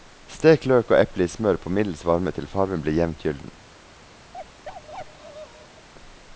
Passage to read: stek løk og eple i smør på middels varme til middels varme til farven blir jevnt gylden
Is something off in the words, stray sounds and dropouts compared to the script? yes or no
yes